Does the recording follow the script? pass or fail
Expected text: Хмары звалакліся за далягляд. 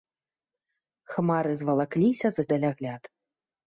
pass